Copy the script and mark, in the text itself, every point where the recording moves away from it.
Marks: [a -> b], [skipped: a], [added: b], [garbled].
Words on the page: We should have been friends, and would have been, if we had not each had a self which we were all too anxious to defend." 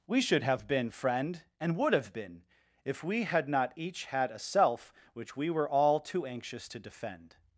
We should have been [friends, -> friend] and would have been, if we had not each had a self which we were all too anxious to defend."